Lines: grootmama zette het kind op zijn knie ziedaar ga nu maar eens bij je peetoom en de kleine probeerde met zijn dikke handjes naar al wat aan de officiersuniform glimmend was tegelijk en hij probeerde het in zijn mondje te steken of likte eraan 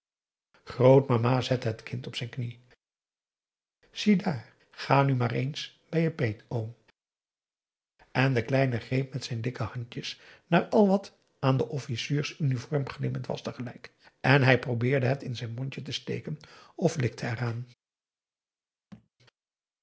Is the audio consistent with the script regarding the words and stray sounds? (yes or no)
no